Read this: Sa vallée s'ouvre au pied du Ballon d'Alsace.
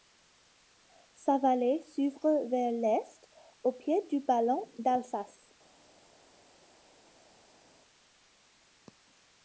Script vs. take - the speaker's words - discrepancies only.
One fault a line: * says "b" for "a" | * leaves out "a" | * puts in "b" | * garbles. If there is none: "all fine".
* puts in "vers l'est"